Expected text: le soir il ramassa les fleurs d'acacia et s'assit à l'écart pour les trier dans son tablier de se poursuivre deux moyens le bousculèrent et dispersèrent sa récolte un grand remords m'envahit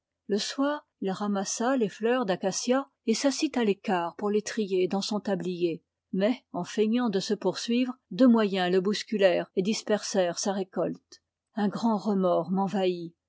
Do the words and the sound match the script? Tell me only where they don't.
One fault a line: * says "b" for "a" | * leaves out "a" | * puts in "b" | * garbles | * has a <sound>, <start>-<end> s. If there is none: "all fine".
* puts in "mais en feignant"